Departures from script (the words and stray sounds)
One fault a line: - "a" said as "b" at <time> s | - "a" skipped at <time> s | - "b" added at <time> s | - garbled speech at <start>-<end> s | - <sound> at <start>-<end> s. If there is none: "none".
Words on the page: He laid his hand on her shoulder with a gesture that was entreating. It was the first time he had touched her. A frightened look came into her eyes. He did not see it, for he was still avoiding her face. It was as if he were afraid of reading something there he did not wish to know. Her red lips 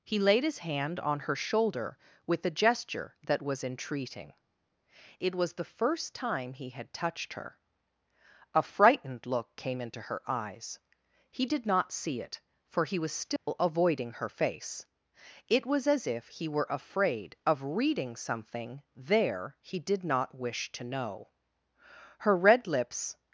- dropout at 13.4-13.5 s